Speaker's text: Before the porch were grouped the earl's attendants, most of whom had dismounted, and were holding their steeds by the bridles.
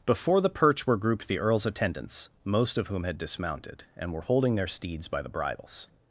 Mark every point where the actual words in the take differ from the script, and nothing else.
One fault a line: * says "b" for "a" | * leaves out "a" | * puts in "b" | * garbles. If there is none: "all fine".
* says "perch" for "porch"